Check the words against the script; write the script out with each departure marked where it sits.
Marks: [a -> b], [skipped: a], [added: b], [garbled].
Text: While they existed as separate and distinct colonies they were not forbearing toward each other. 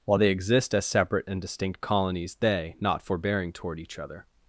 While they [existed -> exist] as separate and distinct colonies they [skipped: were] not forbearing toward each other.